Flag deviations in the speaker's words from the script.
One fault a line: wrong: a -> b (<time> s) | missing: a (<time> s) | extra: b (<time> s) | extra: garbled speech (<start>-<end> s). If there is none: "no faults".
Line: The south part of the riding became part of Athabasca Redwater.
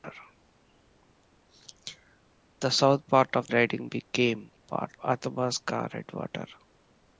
missing: the (3.5 s)
missing: of (4.9 s)